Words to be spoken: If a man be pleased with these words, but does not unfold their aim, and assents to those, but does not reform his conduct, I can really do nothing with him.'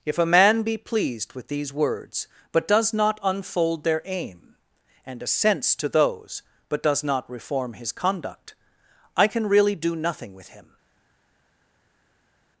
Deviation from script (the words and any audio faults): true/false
false